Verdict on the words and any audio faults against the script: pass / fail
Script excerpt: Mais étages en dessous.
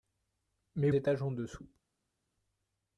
pass